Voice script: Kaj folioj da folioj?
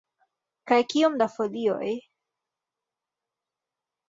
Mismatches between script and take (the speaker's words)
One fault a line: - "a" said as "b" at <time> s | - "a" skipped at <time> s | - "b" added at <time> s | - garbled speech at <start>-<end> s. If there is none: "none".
- "folioj" said as "kiom" at 0.9 s